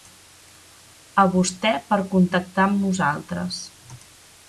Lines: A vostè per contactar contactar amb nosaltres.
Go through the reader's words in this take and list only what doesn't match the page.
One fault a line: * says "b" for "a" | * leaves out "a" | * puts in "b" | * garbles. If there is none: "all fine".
* leaves out "contactar"